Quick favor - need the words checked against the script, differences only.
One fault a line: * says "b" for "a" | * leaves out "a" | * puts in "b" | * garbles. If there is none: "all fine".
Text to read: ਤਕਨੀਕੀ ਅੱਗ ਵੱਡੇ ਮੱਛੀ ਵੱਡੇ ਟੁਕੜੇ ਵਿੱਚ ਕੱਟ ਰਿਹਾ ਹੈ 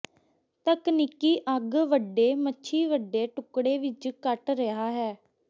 all fine